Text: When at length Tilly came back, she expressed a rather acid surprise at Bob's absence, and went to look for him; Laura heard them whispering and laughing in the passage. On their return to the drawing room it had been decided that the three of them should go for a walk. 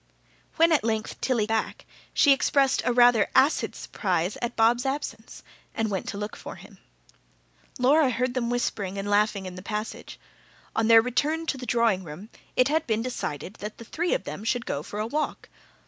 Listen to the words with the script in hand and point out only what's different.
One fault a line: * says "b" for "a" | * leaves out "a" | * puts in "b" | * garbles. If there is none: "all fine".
* leaves out "came"